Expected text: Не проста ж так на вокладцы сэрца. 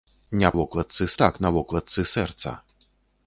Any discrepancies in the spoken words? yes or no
yes